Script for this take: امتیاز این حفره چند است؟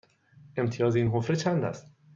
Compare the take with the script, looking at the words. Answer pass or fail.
pass